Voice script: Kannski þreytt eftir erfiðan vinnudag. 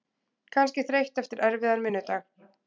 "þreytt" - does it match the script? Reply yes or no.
yes